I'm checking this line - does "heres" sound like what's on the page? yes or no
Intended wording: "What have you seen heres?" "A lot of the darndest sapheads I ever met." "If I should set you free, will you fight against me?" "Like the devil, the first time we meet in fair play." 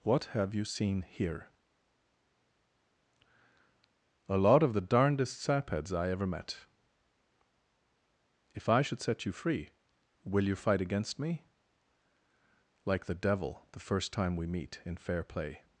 no